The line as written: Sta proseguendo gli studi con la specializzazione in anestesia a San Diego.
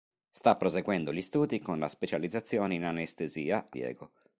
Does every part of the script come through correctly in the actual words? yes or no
no